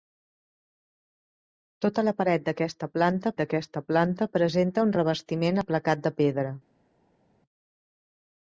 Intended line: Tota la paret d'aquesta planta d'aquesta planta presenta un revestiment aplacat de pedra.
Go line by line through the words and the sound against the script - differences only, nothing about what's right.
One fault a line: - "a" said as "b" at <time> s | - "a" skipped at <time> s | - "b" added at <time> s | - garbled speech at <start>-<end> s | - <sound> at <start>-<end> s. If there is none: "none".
none